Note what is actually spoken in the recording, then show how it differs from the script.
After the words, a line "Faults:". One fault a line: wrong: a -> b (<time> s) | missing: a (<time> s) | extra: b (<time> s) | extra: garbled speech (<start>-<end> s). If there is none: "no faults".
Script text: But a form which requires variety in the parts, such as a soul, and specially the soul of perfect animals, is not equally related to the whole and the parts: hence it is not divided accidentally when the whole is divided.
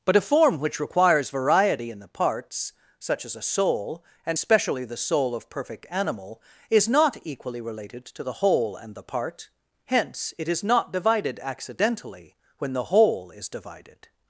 But a form which requires variety in the parts, such as a soul, and specially the soul of perfect animal, is not equally related to the whole and the part: hence it is not divided accidentally when the whole is divided.
Faults:
wrong: animals -> animal (5.9 s)
wrong: parts -> part (9.0 s)